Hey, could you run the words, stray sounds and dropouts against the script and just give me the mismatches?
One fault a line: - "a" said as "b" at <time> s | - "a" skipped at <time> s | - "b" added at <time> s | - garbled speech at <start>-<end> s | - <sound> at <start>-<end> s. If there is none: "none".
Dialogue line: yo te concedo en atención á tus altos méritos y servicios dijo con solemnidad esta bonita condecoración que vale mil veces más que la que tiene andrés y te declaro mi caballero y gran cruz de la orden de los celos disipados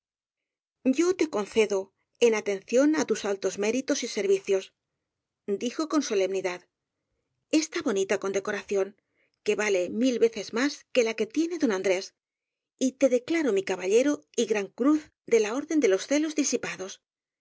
- "don" added at 11.6 s